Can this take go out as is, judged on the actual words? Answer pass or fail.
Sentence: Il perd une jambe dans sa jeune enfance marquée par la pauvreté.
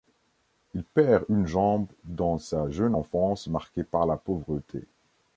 pass